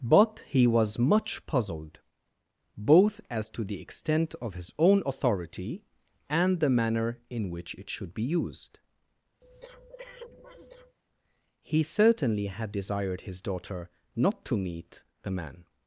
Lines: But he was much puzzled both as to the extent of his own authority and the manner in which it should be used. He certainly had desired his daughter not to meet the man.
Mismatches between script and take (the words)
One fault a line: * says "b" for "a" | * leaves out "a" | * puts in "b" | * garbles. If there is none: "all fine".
all fine